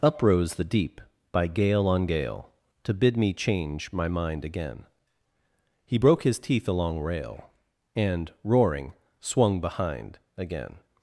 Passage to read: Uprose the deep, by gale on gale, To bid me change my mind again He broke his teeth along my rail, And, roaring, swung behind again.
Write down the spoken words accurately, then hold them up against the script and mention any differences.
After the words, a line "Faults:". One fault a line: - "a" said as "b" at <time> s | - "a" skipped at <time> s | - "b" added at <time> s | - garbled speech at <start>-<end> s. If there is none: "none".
Uprose the deep, by gale on gale, To bid me change my mind again He broke his teeth along rail, And, roaring, swung behind again.
Faults:
- "my" skipped at 7.0 s